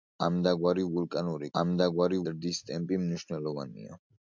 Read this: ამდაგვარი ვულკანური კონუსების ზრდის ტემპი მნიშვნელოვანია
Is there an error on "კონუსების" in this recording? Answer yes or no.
yes